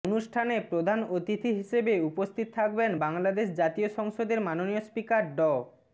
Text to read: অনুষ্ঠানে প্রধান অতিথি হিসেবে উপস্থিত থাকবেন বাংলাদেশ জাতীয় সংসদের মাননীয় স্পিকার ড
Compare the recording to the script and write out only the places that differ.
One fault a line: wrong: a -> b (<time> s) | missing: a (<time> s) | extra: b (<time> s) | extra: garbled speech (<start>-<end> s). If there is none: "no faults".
no faults